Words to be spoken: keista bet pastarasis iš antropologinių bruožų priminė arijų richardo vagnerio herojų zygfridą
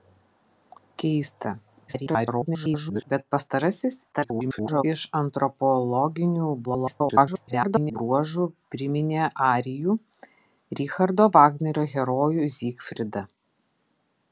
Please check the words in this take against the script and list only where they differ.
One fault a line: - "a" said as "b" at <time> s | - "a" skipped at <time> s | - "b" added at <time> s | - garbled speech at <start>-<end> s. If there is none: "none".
- garbled speech at 1.9-3.0 s
- garbled speech at 4.1-4.8 s
- garbled speech at 6.6-8.0 s